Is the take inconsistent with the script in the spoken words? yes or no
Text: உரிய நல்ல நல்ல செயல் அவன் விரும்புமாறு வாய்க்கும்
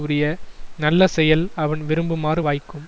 yes